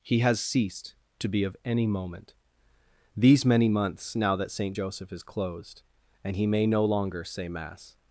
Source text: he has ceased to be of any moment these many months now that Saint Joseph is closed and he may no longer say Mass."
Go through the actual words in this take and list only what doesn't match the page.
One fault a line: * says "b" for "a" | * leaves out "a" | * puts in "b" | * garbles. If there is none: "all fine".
all fine